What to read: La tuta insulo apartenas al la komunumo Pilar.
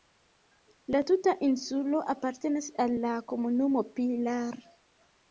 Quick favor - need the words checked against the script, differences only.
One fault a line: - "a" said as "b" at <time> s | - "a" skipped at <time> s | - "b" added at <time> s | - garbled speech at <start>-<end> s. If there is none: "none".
none